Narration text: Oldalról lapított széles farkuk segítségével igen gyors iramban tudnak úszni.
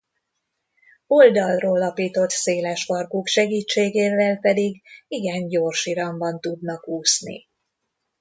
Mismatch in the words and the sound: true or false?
true